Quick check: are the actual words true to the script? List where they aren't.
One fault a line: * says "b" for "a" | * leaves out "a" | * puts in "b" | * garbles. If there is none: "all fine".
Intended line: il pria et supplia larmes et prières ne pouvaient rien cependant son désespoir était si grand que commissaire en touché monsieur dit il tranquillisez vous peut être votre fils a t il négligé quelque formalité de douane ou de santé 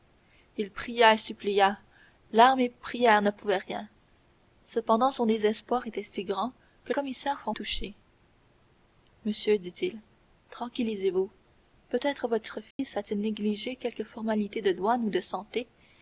all fine